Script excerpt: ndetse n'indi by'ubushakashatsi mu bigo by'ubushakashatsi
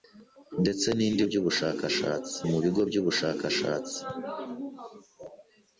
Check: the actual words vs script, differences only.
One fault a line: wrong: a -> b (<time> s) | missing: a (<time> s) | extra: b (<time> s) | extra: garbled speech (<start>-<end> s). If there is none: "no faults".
no faults